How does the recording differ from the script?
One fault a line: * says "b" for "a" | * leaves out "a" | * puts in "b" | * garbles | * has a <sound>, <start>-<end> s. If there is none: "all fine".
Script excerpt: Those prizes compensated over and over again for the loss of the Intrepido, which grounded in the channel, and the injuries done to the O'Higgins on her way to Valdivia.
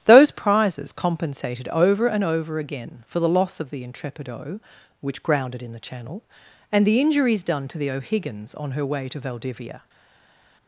all fine